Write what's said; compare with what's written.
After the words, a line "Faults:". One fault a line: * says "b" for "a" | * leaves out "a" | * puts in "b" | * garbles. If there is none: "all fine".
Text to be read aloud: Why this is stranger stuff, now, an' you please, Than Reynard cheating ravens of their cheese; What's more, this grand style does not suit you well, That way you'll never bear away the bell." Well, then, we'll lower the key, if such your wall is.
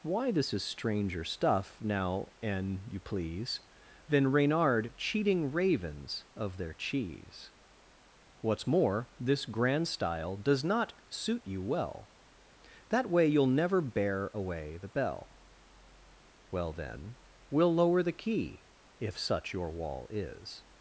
Why this is stranger stuff, now, an' you please, Than Reynard cheating ravens of their cheese; What's more, this grand style does not suit you well, That way you'll never bear away the bell." Well, then, we'll lower the key, if such your wall is.
Faults:
all fine